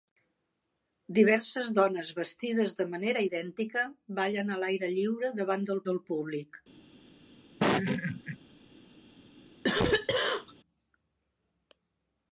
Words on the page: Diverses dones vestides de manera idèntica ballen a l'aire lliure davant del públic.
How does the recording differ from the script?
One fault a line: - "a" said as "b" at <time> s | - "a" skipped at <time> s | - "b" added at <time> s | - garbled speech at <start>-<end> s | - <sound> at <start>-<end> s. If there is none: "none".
- "del" added at 5.9 s
- laugh at 7.6-8.4 s
- cough at 9.6-10.5 s